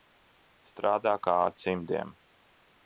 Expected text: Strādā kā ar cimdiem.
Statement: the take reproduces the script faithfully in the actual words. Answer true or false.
true